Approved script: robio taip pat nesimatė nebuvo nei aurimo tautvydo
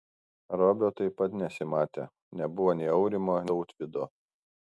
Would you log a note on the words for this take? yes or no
no